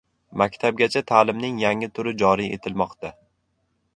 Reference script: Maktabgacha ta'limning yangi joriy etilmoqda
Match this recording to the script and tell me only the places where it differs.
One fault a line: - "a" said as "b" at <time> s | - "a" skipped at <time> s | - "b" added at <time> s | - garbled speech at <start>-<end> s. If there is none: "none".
- "turi" added at 2.0 s